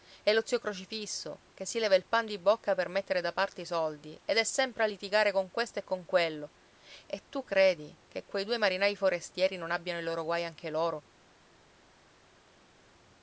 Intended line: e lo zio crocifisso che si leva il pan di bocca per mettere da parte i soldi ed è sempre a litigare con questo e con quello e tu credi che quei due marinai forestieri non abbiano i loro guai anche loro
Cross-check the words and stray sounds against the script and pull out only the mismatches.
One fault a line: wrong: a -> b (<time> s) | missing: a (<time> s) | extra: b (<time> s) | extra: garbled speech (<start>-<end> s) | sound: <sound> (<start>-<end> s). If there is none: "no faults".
no faults